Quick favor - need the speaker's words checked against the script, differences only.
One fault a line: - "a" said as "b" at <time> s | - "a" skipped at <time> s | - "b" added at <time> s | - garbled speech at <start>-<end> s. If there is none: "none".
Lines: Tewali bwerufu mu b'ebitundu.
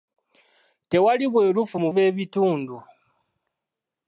none